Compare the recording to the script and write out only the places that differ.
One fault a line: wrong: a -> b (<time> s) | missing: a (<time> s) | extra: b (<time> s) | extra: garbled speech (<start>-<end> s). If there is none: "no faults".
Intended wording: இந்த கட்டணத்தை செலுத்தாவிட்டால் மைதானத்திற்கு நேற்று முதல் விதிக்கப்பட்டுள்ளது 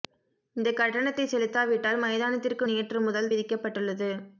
no faults